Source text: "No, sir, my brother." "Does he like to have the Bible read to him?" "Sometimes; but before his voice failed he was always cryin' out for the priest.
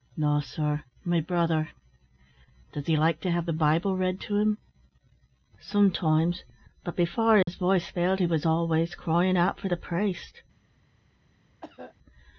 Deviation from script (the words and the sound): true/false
true